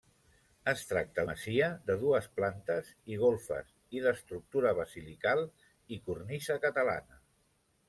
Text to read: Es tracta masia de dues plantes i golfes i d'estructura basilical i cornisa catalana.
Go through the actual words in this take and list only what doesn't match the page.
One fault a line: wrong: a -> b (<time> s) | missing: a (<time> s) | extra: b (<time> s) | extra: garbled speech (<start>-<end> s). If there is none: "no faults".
no faults